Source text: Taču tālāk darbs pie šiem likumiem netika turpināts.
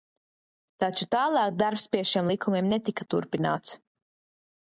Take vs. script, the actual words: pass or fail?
pass